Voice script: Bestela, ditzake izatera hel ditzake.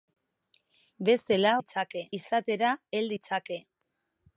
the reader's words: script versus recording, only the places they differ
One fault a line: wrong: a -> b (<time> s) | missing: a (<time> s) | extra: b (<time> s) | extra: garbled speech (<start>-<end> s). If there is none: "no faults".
no faults